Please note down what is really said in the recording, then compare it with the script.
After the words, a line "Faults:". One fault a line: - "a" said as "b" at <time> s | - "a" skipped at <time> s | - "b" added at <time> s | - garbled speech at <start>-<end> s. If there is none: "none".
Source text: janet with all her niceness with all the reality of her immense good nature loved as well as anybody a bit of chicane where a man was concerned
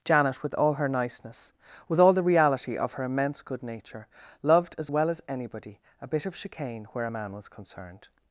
janet with all her niceness with all the reality of her immense good nature loved as well as anybody a bit of chicane where a man was concerned
Faults:
none